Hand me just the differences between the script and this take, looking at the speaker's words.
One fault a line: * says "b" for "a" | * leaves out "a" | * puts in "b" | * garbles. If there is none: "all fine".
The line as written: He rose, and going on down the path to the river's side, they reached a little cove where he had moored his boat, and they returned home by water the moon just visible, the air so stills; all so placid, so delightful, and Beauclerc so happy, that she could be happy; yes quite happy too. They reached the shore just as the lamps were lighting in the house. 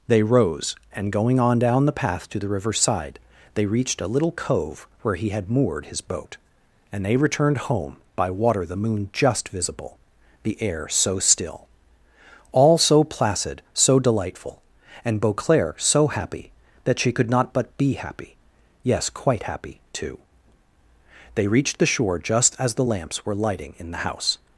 * says "They" for "He"
* says "still" for "stills"
* puts in "not but"